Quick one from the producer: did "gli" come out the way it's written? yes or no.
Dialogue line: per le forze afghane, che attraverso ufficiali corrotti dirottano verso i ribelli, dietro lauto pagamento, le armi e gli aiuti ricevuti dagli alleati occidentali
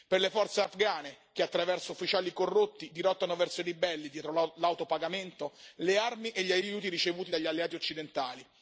yes